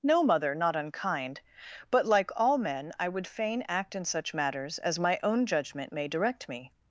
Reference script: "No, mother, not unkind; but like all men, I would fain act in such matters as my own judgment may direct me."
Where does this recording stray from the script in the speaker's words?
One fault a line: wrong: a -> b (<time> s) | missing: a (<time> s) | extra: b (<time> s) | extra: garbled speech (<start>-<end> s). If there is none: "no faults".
no faults